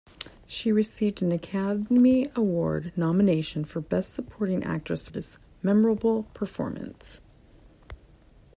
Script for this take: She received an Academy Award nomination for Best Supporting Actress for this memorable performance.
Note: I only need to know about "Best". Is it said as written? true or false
true